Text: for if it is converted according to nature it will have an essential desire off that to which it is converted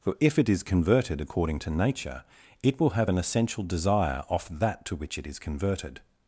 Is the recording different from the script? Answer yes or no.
no